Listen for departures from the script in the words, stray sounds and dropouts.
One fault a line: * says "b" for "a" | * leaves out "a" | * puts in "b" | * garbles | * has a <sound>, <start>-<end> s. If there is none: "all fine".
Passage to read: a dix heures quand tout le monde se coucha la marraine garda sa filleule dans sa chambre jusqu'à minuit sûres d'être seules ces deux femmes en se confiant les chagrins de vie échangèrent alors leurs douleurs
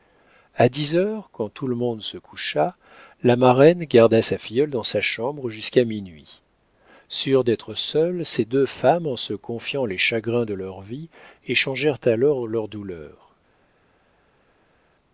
* puts in "leur"